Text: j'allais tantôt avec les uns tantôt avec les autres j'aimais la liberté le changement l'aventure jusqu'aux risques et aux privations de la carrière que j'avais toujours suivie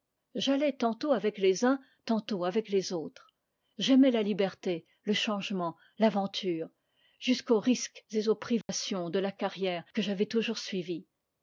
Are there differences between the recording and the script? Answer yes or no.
no